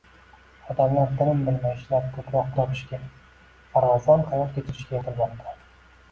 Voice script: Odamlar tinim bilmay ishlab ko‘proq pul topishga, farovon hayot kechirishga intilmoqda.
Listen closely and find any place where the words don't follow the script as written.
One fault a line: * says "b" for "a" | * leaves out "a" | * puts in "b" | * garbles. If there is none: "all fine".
* leaves out "pul"